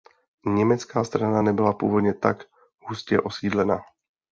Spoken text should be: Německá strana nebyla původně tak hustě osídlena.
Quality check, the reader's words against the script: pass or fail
pass